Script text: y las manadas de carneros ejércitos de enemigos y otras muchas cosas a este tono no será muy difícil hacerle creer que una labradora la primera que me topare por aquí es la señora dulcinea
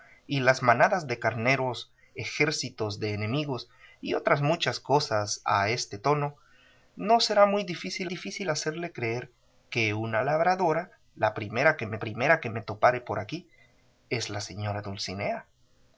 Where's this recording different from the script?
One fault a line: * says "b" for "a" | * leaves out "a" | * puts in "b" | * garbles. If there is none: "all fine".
* puts in "difícil"
* puts in "primera que me"